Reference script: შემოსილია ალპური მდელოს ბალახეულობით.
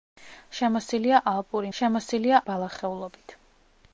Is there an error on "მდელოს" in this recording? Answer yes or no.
yes